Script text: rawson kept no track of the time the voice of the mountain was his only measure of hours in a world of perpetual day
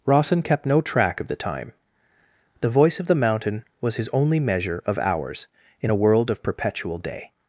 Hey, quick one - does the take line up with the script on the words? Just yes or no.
yes